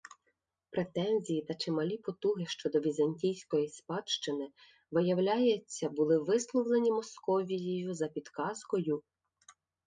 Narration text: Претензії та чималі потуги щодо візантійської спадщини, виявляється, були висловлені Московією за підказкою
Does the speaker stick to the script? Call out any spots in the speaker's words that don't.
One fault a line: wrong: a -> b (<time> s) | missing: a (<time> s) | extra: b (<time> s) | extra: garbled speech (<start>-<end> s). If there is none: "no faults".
no faults